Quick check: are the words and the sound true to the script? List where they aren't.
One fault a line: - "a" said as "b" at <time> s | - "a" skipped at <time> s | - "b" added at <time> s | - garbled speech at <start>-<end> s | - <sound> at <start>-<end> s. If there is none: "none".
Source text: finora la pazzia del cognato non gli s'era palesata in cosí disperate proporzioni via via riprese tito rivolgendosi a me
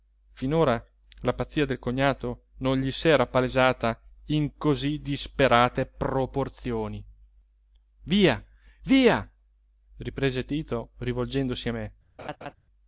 - laugh at 12.2-12.5 s